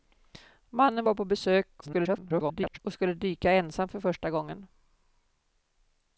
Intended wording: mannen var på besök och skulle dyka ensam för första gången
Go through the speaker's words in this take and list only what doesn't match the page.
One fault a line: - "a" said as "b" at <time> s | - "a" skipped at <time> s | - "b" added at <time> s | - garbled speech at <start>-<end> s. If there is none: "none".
- garbled speech at 1.8-2.8 s